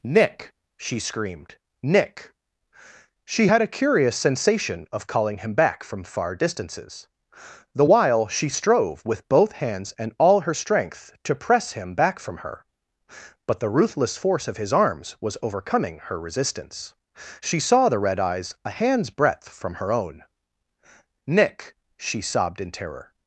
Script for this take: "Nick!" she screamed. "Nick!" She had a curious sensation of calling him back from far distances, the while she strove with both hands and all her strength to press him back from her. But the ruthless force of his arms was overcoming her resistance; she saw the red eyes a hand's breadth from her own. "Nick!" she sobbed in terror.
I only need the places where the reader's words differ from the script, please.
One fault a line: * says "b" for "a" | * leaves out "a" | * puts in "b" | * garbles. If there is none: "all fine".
all fine